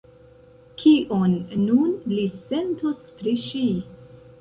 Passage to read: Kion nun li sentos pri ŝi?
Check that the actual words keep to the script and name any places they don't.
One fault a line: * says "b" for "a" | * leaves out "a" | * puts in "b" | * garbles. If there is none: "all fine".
all fine